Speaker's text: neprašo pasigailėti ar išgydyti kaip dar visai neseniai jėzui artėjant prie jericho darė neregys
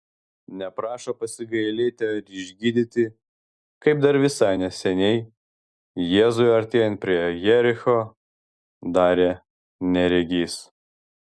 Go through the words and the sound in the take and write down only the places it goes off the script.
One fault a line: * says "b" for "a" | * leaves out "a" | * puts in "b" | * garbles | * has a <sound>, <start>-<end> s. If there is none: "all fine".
all fine